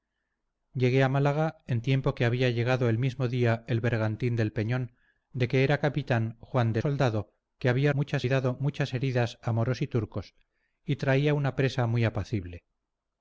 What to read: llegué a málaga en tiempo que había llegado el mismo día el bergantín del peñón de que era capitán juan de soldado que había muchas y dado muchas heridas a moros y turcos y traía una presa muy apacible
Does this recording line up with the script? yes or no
yes